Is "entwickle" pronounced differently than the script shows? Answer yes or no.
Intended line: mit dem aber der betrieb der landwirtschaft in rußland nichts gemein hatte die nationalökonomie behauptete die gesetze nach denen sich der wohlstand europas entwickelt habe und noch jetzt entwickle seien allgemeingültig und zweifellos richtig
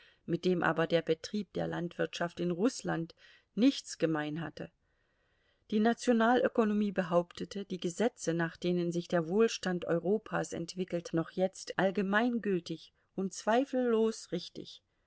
yes